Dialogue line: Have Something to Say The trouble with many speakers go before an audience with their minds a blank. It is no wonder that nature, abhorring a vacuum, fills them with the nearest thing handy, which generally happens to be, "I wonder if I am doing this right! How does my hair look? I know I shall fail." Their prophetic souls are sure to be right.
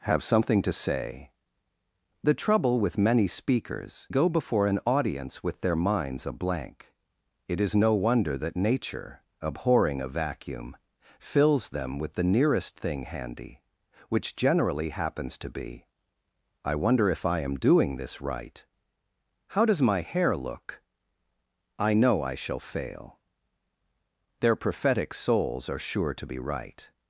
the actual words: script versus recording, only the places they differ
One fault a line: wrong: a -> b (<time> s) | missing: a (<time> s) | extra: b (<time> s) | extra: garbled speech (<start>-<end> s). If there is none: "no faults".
no faults